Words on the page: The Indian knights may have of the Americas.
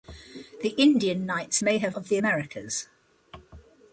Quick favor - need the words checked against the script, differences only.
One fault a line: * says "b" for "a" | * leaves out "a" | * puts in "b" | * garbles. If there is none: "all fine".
all fine